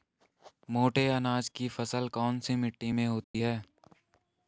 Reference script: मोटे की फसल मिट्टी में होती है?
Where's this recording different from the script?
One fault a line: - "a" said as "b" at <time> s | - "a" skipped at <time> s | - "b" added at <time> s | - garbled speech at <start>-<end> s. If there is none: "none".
- "अनाज" added at 1.1 s
- "कौन सी" added at 2.1 s